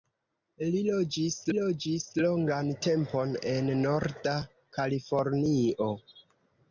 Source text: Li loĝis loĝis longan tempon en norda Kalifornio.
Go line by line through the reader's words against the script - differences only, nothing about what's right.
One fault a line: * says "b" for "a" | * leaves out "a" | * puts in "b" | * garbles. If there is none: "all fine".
all fine